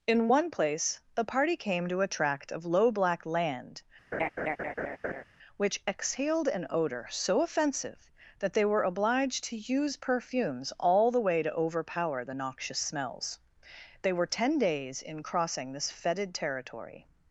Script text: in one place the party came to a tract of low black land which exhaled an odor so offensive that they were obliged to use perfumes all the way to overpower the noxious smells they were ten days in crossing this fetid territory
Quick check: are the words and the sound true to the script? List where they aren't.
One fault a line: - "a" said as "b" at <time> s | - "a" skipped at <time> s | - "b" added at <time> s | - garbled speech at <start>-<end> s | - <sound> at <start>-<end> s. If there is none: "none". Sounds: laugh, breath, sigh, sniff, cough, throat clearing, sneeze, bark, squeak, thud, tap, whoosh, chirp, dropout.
- laugh at 4.1-5.2 s